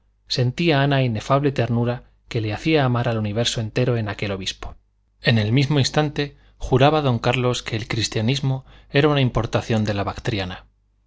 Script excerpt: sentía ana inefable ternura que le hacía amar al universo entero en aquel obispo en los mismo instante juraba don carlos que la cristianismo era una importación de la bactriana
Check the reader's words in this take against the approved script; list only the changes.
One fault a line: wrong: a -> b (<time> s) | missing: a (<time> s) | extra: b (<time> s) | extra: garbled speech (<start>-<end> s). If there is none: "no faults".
wrong: los -> el (5.4 s)
wrong: la -> el (7.8 s)